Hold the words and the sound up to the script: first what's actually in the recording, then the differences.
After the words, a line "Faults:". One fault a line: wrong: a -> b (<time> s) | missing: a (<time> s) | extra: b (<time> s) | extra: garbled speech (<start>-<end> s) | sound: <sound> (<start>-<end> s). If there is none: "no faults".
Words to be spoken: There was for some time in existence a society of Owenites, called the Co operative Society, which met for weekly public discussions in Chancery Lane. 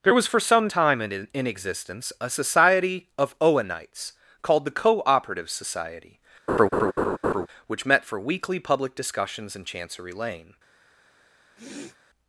There was for some time in in existence a society of Owenites, called the Co operative Society, which met for weekly public discussions in Chancery Lane.
Faults:
extra: in (1.3 s)
sound: laugh (6.5-7.5 s)
sound: sniff (11.6-12.0 s)